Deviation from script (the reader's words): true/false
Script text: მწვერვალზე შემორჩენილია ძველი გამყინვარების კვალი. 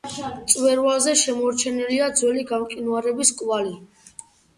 false